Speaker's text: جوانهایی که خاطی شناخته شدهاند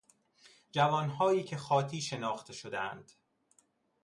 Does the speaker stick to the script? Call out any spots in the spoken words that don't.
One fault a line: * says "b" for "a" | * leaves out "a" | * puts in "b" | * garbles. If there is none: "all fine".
all fine